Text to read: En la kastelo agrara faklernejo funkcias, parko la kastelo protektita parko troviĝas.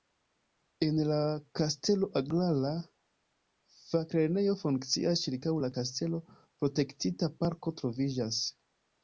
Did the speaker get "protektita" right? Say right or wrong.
right